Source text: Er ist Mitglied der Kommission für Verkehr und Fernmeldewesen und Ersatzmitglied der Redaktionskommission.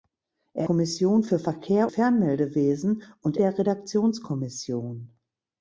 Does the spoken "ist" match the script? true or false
false